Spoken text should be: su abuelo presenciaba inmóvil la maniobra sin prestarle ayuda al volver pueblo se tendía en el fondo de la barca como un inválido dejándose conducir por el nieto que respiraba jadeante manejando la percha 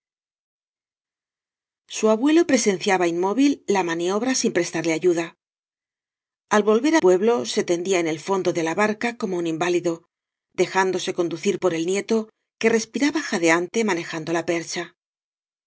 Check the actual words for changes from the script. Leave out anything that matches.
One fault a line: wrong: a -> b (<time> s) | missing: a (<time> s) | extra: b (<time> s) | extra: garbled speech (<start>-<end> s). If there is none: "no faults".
no faults